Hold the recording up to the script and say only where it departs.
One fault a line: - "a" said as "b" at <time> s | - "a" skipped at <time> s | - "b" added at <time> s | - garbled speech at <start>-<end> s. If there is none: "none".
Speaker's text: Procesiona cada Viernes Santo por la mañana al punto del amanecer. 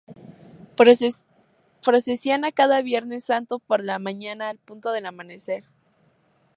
none